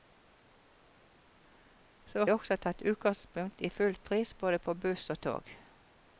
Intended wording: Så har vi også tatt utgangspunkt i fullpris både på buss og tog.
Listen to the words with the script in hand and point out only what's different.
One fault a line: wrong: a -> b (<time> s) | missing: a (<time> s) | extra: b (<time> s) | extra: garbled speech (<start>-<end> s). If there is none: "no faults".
missing: har vi (2.2 s)